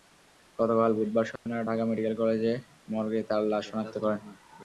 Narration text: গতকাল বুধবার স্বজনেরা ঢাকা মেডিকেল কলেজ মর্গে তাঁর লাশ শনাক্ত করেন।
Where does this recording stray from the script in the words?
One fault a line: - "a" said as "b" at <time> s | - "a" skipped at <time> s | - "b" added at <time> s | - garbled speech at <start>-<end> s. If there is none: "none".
none